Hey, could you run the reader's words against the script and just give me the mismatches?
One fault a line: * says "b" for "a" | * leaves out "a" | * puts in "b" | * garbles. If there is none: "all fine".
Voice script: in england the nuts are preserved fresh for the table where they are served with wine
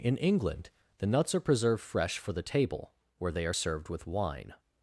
all fine